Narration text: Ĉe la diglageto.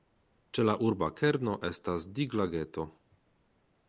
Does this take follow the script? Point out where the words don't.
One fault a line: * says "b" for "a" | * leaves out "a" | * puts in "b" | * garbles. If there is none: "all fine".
* puts in "urba kerno estas"